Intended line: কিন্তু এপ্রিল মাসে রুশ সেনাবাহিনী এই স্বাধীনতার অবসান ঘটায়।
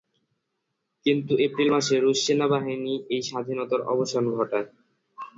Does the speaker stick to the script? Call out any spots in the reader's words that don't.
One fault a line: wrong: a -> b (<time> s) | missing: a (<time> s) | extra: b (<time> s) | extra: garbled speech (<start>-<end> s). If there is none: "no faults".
no faults